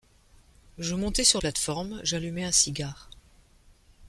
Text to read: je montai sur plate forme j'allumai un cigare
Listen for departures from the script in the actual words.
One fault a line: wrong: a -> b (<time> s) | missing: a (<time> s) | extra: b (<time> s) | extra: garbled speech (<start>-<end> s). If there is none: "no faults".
no faults